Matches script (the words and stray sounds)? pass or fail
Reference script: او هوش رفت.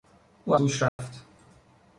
fail